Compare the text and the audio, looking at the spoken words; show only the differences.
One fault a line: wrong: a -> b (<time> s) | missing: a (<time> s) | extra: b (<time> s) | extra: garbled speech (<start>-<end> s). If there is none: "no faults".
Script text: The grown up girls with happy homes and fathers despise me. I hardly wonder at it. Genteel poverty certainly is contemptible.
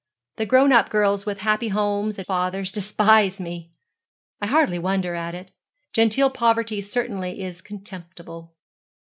no faults